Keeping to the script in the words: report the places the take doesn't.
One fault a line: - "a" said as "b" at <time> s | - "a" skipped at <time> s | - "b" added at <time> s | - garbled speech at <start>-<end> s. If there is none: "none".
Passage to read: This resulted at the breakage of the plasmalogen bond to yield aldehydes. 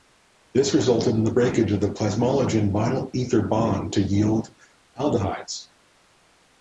- "at" said as "in" at 1.1 s
- "vinyl ether" added at 2.7 s